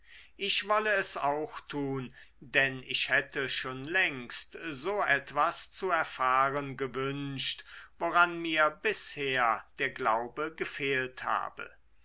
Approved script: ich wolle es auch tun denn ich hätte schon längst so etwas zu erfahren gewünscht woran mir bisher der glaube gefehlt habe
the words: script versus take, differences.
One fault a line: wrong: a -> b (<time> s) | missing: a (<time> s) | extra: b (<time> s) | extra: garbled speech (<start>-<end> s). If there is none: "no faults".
no faults